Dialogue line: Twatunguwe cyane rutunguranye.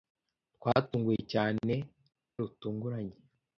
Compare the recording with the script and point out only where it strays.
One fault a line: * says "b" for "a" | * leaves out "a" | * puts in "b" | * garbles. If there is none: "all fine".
all fine